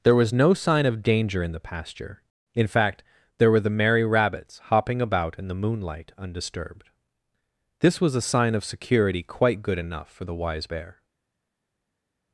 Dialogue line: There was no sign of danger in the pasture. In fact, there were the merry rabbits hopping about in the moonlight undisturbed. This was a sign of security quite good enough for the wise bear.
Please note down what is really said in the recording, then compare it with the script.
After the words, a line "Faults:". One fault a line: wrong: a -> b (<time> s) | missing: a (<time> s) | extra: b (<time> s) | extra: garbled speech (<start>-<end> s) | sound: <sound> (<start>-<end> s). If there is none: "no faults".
There was no sign of danger in the pasture. In fact, there were the merry rabbits hopping about in the moonlight undisturbed. This was a sign of security quite good enough for the wise bear.
Faults:
no faults